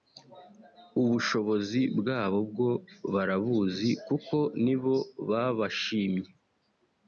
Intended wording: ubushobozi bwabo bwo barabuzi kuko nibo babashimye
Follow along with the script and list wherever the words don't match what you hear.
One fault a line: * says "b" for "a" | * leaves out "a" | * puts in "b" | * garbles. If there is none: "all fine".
all fine